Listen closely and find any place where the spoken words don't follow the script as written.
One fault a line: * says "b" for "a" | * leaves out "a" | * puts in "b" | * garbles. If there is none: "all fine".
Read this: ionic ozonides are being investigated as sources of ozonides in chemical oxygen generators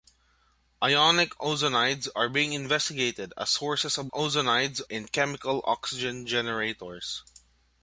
all fine